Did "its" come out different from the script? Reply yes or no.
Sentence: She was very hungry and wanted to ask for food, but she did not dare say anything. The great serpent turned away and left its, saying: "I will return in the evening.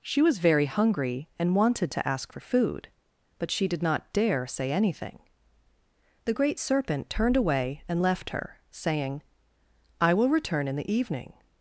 yes